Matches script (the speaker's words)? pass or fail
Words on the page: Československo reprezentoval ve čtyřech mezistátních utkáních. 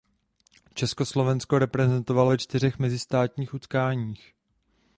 pass